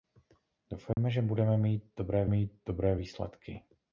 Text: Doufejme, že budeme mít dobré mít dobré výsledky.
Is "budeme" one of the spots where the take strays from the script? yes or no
no